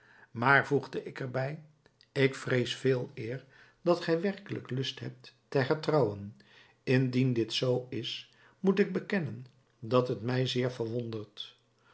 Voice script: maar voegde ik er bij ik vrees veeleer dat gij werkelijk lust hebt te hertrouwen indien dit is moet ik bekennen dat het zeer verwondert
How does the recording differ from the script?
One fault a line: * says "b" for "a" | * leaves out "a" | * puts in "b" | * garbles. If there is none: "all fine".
* puts in "zoo"
* puts in "mij"